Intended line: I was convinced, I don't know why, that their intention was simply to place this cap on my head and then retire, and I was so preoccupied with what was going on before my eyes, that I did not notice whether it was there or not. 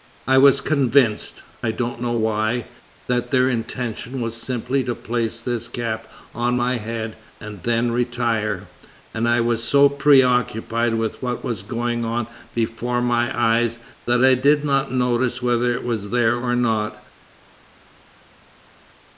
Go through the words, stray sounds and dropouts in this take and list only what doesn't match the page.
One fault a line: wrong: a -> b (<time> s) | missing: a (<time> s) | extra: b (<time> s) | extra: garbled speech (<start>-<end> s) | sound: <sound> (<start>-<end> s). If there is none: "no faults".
no faults